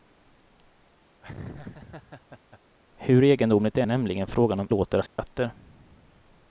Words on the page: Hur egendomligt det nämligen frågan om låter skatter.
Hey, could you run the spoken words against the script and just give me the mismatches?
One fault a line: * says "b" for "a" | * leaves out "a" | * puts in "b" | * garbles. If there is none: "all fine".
all fine